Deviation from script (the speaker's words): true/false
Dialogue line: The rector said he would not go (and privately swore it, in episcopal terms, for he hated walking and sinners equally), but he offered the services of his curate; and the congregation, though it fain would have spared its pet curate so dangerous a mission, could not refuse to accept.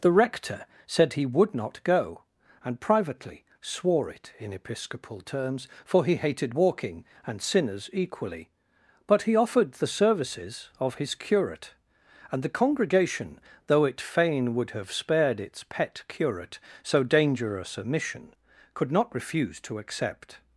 false